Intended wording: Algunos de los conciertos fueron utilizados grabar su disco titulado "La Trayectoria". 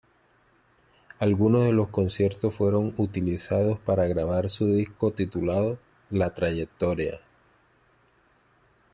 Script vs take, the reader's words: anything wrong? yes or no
yes